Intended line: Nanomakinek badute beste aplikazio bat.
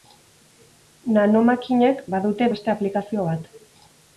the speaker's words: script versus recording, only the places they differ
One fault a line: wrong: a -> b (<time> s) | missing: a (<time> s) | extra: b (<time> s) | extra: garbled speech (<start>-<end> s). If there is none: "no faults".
no faults